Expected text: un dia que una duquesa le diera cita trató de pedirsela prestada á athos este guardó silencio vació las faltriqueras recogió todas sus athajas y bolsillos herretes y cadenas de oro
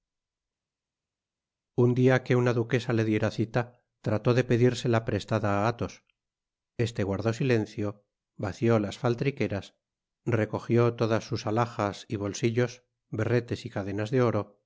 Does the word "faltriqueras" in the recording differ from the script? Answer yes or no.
no